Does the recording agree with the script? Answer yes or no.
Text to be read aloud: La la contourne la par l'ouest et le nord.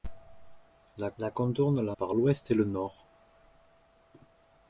yes